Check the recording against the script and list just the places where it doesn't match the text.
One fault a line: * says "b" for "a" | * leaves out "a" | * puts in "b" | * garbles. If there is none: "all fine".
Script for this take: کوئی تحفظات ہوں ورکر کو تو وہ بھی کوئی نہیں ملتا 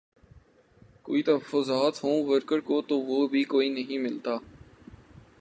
all fine